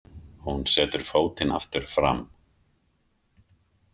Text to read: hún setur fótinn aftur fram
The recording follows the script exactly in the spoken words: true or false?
true